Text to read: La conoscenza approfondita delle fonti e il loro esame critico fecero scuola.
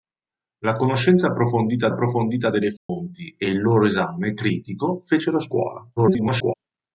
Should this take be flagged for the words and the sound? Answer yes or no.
yes